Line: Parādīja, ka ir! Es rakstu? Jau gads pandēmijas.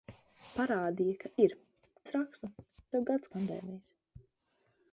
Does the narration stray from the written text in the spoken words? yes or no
no